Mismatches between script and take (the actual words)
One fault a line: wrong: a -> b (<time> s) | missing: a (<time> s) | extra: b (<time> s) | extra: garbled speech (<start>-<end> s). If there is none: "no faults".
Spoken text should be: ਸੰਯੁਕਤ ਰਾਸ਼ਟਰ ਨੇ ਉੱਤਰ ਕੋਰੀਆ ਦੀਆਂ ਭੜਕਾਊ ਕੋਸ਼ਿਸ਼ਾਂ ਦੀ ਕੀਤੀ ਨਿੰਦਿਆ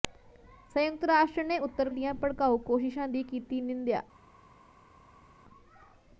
missing: ਕੋਰੀਆ (1.9 s)